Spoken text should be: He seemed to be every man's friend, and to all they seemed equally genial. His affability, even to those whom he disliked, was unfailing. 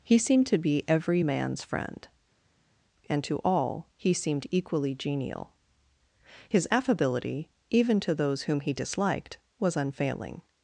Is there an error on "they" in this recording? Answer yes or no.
yes